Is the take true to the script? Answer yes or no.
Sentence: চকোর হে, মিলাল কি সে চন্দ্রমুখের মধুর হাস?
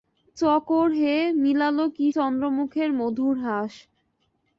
no